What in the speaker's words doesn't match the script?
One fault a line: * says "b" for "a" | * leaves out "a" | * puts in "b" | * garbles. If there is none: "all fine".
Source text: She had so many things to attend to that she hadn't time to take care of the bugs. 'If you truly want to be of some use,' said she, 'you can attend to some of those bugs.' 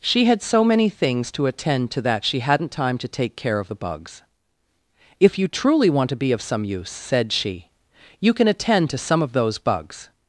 all fine